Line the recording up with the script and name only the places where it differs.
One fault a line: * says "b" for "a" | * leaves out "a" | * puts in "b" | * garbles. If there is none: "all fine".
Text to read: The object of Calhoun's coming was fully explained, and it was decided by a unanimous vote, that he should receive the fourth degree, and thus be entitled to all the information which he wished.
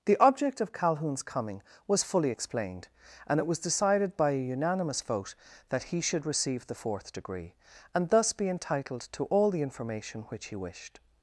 all fine